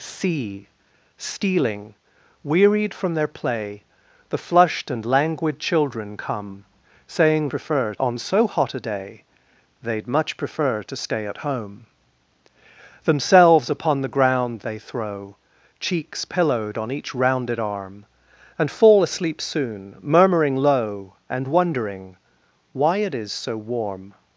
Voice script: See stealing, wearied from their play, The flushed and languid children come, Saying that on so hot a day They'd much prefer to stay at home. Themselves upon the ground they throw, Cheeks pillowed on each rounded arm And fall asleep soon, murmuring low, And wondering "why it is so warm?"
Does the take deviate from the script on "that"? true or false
true